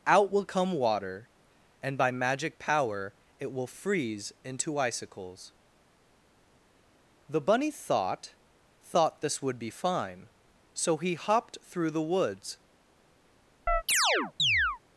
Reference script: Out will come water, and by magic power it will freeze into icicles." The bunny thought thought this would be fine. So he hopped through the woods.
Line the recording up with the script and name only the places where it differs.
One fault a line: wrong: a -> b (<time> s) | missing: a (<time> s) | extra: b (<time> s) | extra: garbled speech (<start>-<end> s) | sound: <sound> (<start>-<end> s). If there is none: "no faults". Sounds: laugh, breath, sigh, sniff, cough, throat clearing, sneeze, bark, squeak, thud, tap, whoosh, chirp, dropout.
sound: chirp (13.7-14.8 s)